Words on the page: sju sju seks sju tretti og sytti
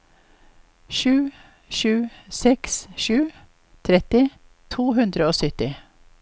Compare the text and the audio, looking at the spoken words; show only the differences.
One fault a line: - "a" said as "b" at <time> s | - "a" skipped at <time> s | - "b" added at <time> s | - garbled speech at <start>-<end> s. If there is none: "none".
- "to hundre" added at 4.8 s